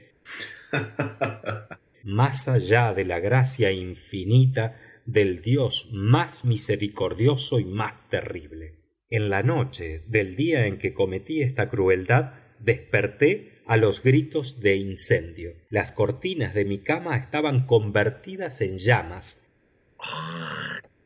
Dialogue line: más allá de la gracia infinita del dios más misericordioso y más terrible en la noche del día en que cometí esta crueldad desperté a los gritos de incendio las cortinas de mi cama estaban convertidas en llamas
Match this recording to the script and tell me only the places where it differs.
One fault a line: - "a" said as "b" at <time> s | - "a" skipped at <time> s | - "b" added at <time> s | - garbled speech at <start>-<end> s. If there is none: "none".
none